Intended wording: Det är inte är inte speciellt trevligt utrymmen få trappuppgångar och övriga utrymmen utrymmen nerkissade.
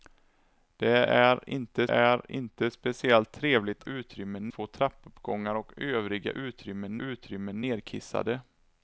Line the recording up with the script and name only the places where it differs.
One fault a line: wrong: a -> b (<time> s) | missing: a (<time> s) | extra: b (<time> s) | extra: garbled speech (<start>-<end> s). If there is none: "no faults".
no faults